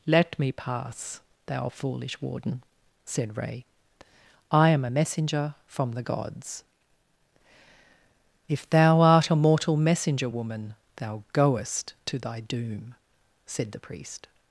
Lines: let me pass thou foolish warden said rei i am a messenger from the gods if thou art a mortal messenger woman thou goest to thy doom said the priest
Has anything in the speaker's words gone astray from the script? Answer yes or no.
no